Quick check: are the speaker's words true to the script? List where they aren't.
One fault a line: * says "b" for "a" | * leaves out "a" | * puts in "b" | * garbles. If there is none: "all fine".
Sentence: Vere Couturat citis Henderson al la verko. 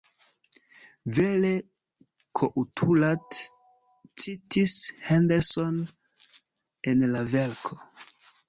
* says "en" for "al"